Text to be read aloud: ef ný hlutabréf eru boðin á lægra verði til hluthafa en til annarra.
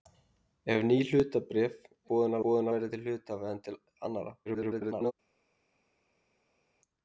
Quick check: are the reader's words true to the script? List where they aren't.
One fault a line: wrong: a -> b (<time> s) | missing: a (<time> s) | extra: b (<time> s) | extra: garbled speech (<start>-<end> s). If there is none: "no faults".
missing: eru (1.8 s)
wrong: lægra -> boðin (2.4 s)
extra: garbled speech (4.5-5.1 s)